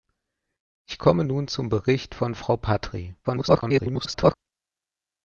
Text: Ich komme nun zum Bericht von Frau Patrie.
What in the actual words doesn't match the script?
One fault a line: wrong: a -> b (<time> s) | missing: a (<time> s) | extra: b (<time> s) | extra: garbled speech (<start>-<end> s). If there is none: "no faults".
extra: garbled speech (3.2-4.3 s)